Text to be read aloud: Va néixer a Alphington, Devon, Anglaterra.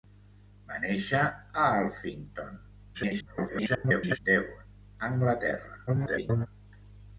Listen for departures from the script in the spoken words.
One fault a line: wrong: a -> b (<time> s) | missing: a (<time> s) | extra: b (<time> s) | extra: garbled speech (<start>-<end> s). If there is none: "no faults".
extra: garbled speech (2.9-4.2 s)
extra: garbled speech (5.9-6.5 s)